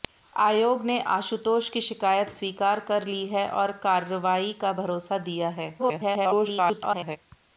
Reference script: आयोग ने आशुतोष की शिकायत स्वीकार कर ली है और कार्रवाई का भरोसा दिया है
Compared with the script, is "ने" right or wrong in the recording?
right